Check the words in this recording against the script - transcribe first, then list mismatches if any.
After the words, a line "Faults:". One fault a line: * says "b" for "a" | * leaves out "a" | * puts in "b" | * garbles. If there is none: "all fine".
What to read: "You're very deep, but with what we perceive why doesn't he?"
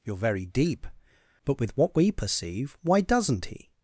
"You're very deep, but with what we perceive why doesn't he?"
Faults:
all fine